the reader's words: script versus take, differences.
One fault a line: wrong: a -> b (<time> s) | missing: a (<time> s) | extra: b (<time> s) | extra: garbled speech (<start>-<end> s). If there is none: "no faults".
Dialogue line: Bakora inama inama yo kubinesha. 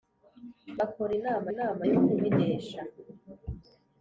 no faults